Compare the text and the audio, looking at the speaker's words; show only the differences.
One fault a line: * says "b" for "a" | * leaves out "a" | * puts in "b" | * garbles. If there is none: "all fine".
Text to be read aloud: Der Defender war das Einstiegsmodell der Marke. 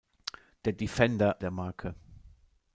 * leaves out "war das Einstiegsmodell"